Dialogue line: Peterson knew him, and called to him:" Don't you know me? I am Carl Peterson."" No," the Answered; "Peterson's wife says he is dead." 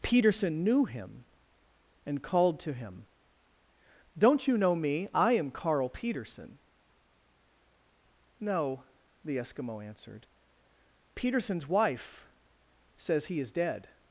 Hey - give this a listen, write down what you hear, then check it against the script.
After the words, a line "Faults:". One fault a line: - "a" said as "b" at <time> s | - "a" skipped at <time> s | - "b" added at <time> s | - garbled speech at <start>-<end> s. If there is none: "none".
Peterson knew him, and called to him:" Don't you know me? I am Carl Peterson."" No," the Eskimo answered; "Peterson's wife says he is dead."
Faults:
- "Eskimo" added at 9.4 s